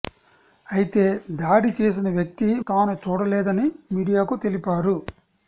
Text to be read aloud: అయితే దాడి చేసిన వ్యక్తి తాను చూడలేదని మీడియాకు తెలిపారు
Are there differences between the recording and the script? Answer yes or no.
no